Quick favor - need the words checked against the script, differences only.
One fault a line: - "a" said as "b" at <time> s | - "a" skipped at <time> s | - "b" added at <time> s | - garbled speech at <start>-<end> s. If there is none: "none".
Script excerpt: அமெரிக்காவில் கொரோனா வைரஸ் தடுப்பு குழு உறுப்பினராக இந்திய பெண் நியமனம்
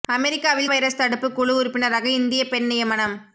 - "கொரோனா" skipped at 0.7 s